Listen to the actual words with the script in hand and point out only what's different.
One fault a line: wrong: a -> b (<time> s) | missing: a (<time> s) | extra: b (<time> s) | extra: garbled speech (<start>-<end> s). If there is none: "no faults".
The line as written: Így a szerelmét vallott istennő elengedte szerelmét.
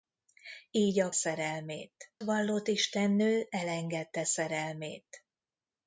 no faults